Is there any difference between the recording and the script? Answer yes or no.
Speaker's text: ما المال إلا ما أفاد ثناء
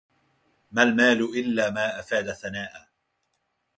no